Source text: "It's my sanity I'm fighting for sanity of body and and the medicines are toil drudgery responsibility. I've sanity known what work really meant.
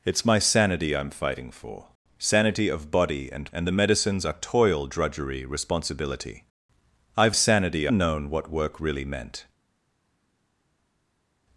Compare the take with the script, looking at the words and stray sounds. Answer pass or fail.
pass